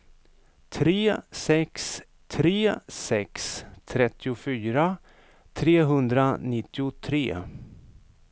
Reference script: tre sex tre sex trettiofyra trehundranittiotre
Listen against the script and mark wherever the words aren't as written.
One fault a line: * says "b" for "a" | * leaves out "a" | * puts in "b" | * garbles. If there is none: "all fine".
all fine